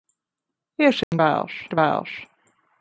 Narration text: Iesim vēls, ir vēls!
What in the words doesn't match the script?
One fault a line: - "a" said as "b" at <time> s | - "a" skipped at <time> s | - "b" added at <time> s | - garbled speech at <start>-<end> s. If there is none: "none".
none